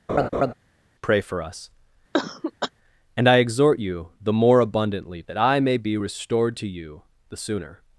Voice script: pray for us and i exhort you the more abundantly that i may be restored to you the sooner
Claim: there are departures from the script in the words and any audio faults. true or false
true